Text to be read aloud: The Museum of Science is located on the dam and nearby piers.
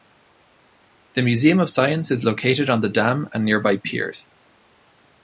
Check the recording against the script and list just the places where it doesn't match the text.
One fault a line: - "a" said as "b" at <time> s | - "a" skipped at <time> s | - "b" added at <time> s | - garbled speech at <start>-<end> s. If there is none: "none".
none